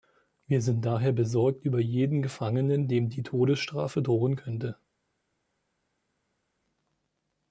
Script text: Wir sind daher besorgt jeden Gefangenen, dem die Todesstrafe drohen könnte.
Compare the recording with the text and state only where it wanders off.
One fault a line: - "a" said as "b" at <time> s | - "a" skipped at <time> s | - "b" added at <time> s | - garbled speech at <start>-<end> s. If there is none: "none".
- "über" added at 1.6 s